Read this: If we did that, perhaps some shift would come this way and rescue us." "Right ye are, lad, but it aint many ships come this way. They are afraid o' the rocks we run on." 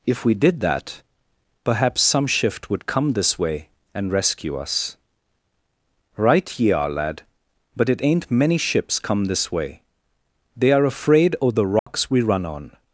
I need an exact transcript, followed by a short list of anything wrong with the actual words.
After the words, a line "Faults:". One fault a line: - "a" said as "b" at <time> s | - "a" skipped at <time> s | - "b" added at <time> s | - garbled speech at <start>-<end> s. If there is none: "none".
If we did that, perhaps some shift would come this way and rescue us." "Right ye are, lad, but it aint many ships come this way. They are afraid o' the rocks we run on."
Faults:
none